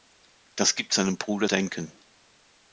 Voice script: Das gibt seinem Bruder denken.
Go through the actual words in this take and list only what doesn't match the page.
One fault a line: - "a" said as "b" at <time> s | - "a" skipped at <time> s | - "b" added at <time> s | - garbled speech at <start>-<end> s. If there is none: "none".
none